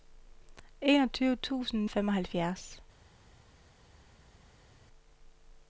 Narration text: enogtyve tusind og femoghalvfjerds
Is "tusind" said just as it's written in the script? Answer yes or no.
yes